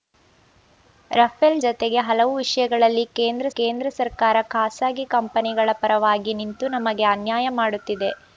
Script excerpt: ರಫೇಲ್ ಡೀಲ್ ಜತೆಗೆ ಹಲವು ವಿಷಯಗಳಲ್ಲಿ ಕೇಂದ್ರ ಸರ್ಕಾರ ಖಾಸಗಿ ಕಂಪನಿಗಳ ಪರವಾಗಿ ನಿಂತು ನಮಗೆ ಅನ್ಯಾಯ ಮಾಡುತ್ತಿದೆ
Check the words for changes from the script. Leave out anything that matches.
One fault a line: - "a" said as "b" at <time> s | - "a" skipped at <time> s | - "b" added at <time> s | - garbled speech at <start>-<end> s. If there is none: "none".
- "ಡೀಲ್" skipped at 1.6 s
- "ಕೇಂದ್ರ" added at 3.5 s